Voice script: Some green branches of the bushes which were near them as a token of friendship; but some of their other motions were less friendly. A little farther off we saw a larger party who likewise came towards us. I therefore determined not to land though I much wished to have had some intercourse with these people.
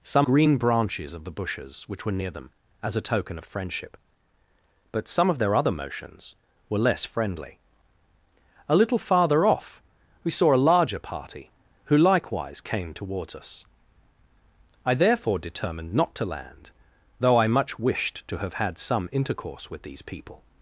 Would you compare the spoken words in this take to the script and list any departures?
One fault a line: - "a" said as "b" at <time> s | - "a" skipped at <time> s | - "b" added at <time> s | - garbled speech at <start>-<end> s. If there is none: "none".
none